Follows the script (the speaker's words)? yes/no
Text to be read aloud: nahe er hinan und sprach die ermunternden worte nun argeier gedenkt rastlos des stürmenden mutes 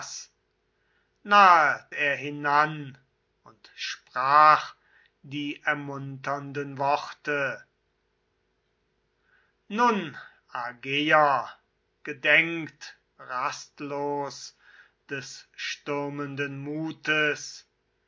yes